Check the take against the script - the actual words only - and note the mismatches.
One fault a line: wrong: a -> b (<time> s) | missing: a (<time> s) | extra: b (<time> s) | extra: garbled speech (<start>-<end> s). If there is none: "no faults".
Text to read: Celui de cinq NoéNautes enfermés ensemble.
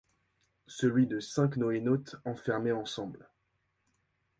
no faults